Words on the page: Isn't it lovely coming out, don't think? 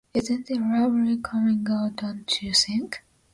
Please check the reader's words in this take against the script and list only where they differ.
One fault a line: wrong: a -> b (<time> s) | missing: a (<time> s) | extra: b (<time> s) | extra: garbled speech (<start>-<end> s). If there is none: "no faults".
extra: you (2.4 s)